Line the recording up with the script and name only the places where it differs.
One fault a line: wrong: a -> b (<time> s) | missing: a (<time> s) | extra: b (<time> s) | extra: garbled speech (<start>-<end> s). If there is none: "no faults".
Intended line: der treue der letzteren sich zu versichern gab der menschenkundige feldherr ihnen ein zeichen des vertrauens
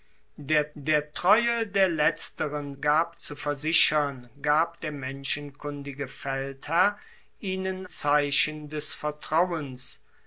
extra: der (0.8 s)
wrong: sich -> gab (2.8 s)
missing: ein (7.8 s)